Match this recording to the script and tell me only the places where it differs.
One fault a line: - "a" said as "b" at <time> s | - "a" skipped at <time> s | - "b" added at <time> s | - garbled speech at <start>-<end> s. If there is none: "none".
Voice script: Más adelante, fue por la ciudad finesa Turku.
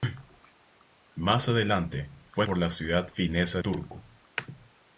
none